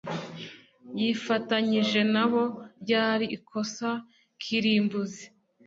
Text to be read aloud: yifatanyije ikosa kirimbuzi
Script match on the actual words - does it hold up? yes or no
no